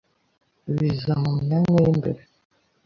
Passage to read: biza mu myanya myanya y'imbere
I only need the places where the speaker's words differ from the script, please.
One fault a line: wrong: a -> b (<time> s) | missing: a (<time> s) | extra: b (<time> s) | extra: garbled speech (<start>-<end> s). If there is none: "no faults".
missing: myanya (1.8 s)